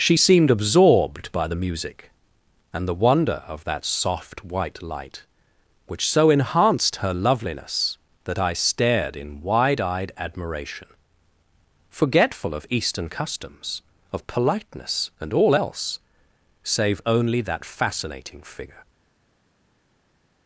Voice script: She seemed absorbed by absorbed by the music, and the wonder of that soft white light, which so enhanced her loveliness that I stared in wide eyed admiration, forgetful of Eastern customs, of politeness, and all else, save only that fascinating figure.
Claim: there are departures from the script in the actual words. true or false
true